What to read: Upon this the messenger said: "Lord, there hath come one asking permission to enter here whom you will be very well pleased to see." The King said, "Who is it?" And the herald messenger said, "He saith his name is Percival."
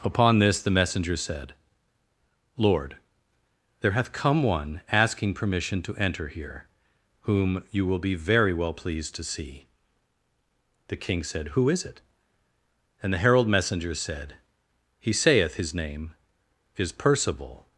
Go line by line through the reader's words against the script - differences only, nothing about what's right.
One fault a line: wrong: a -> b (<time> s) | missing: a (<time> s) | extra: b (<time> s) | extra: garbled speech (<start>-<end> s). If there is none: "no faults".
no faults